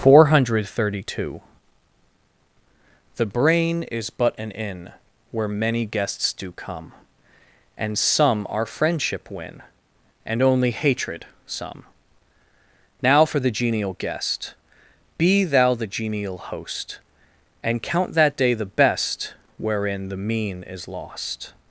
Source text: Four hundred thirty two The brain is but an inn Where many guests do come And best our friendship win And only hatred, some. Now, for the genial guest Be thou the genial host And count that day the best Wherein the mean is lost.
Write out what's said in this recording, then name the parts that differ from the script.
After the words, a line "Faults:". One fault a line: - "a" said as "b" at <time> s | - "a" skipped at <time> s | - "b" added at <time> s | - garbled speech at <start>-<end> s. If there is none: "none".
Four hundred thirty two The brain is but an inn Where many guests do come And some our friendship win And only hatred, some. Now, for the genial guest Be thou the genial host And count that day the best Wherein the mean is lost.
Faults:
- "best" said as "some" at 8.0 s